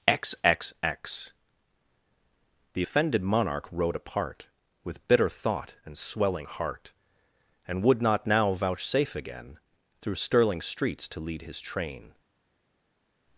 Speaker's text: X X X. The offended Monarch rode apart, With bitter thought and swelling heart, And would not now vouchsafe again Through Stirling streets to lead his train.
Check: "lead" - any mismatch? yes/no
no